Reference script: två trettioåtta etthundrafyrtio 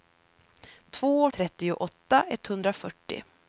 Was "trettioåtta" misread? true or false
false